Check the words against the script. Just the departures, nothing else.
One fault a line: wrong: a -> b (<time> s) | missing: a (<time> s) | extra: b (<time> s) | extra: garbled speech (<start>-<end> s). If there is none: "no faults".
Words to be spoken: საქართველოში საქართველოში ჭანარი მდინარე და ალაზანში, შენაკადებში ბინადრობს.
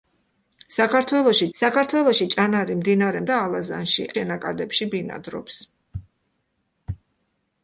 no faults